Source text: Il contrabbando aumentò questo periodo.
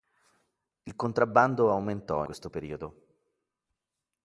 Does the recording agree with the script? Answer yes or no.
yes